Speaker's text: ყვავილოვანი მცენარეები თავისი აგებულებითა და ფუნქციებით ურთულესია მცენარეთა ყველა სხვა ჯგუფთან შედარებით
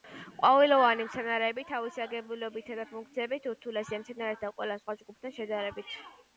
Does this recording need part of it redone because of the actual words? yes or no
no